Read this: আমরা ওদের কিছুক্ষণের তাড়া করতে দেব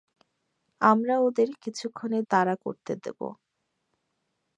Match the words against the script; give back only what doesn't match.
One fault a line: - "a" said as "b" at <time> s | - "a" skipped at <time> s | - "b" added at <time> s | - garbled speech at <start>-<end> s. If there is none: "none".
none